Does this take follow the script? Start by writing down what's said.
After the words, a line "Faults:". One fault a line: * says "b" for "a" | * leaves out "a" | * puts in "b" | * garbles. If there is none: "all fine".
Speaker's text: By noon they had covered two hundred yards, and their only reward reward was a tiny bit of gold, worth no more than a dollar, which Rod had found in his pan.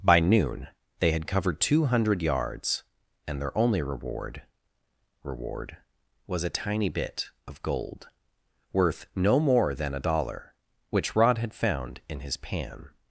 By noon they had covered two hundred yards, and their only reward reward was a tiny bit of gold, worth no more than a dollar, which Rod had found in his pan.
Faults:
all fine